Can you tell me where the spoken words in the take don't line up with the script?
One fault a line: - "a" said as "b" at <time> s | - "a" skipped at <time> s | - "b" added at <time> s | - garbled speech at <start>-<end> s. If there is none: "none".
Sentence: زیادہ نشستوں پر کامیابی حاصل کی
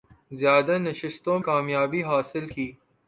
- "پر" skipped at 1.4 s